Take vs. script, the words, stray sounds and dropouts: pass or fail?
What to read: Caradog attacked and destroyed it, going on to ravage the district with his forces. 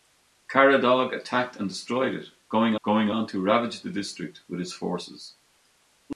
fail